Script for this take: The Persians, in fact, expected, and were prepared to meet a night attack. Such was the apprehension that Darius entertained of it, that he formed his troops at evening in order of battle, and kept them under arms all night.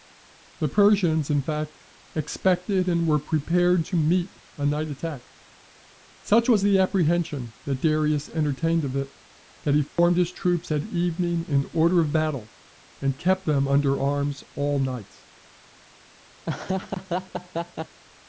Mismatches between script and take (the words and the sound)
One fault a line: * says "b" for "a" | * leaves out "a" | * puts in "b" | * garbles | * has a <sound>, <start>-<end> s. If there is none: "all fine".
* has a dropout, 9.9-10.0 s
* has a laugh, 16.4-18.0 s